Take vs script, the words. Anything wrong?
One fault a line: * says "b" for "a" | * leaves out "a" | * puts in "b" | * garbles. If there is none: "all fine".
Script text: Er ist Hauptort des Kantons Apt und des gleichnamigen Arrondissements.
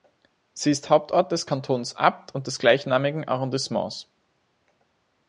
* says "Sie" for "Er"